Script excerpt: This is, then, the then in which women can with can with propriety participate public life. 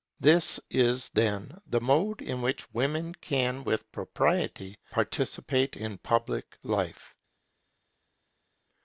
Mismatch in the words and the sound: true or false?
true